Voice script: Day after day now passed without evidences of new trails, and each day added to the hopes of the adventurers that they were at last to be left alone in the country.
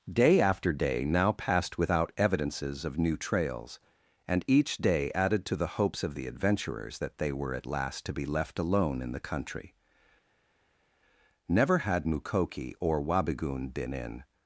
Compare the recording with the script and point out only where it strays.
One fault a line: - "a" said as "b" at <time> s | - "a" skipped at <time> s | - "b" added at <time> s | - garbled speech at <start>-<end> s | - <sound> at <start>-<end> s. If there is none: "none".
- "Never had Mukoki or Wabigoon been in" added at 11.5 s